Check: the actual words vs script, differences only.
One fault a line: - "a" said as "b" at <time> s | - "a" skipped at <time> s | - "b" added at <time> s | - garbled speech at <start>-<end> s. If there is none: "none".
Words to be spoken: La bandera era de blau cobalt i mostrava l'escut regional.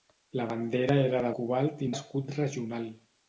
- "blau" skipped at 1.3 s
- "mostrava" skipped at 1.9 s